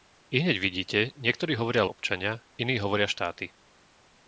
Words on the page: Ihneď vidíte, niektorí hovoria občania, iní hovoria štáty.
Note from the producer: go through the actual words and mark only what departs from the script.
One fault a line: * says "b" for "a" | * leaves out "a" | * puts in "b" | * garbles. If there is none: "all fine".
all fine